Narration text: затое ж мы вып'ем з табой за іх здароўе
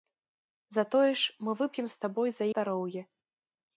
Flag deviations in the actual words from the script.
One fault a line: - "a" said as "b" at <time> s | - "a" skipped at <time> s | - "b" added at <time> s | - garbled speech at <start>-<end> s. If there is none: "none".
- "іх" skipped at 2.5 s